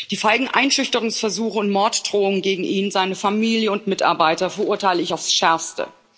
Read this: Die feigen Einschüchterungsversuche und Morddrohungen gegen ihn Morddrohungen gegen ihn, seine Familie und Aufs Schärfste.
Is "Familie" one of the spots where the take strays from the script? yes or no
yes